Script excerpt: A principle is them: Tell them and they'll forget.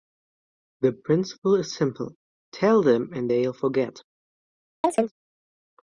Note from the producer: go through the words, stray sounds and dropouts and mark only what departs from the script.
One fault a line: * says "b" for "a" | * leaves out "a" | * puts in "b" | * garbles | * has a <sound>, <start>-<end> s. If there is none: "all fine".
* says "The" for "A"
* says "simple" for "them"
* has a chirp, 4.8-5.1 s